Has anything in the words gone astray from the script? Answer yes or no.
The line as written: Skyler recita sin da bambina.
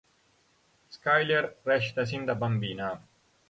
no